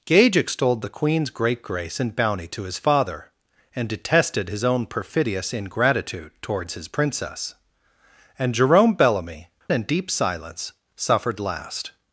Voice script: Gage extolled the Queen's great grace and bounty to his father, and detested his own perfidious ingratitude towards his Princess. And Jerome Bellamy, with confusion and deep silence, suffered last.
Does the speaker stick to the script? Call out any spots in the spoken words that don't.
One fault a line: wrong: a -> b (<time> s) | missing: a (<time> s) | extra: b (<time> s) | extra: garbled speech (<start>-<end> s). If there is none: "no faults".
missing: with confusion (9.5 s)